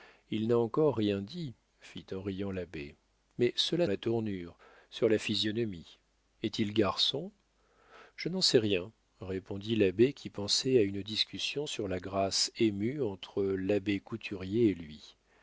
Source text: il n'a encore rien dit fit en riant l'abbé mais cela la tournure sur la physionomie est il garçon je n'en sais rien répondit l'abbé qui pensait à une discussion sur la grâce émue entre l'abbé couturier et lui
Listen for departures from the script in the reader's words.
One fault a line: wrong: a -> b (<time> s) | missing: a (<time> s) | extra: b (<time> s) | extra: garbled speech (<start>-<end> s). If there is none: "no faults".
no faults